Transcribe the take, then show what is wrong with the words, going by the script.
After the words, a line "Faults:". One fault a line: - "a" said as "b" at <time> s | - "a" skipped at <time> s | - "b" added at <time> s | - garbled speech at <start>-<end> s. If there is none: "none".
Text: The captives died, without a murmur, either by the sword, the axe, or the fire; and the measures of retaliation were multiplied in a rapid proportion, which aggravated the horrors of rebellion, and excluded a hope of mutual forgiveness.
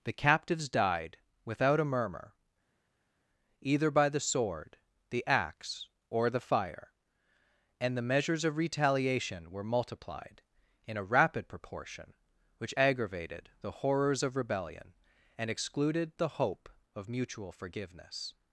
The captives died, without a murmur, either by the sword, the axe, or the fire; and the measures of retaliation were multiplied in a rapid proportion, which aggravated the horrors of rebellion, and excluded the hope of mutual forgiveness.
Faults:
- "a" said as "the" at 16.2 s